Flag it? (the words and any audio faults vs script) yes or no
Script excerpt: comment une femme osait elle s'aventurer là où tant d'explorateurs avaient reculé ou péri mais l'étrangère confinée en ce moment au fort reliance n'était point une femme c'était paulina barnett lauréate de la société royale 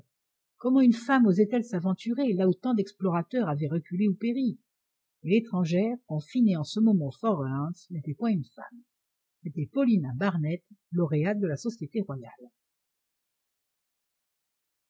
no